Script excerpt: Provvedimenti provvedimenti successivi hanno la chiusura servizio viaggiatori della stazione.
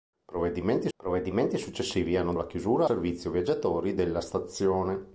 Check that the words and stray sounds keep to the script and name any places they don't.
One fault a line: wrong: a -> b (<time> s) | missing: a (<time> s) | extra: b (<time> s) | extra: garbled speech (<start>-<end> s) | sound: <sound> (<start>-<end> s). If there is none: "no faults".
no faults